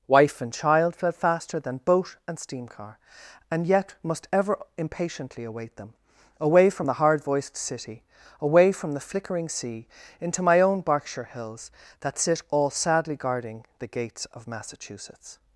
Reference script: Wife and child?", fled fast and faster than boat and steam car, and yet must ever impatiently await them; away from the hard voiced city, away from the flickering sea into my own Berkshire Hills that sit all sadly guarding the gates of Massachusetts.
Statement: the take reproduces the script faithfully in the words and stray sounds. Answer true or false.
false